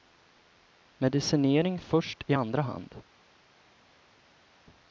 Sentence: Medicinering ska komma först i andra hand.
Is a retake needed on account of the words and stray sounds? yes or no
yes